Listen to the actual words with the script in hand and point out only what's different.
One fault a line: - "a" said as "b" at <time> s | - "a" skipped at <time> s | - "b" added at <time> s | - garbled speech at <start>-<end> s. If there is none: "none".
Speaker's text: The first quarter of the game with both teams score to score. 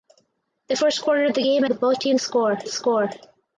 none